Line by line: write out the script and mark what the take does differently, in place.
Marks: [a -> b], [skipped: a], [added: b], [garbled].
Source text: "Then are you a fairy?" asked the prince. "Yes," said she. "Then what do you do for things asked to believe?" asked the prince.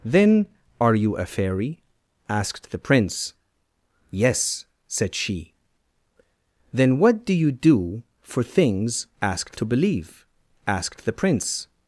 "Then are you a fairy?" asked the prince. "Yes," said she. "Then what do you do for things asked to believe?" asked the prince.